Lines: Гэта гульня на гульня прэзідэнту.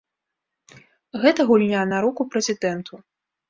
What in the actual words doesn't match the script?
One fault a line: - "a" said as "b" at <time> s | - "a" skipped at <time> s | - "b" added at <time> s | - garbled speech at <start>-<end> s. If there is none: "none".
- "гульня" said as "руку" at 2.1 s